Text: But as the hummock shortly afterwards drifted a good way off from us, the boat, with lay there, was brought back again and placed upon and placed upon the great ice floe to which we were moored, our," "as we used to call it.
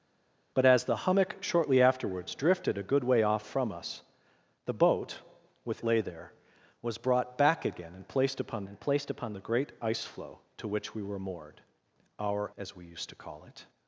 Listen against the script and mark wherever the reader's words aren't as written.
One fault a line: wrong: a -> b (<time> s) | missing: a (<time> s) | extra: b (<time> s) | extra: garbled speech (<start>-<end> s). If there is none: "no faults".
no faults